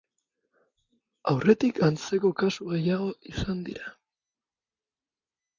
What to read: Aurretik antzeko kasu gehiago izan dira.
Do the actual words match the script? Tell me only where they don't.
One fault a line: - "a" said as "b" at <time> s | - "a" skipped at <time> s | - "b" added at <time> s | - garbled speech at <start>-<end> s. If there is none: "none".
none